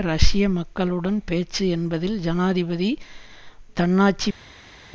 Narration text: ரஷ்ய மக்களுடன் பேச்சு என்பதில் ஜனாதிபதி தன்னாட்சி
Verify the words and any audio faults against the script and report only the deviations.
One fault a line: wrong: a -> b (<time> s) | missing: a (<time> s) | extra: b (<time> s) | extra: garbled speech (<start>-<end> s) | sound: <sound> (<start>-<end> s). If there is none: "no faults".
no faults